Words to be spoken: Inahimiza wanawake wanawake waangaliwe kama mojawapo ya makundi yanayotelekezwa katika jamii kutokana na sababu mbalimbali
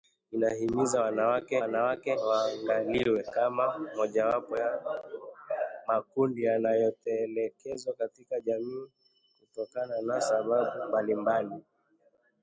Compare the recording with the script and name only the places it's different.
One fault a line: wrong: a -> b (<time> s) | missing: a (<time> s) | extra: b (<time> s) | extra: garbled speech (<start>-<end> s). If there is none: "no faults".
no faults